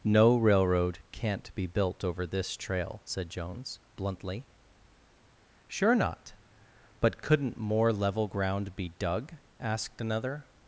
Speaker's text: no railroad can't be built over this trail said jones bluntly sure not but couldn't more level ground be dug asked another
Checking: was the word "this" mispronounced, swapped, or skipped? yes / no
no